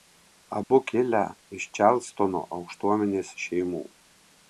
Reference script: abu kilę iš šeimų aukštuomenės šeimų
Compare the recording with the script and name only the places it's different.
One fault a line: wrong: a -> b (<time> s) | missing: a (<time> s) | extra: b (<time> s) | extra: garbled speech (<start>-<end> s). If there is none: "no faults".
wrong: šeimų -> čarlstono (1.8 s)